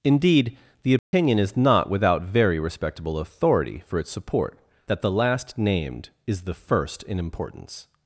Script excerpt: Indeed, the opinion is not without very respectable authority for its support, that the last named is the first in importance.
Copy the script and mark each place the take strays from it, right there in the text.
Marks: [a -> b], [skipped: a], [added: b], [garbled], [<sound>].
Indeed, the opinion [dropout] is not without very respectable authority for its support, that the last named is the first in importance.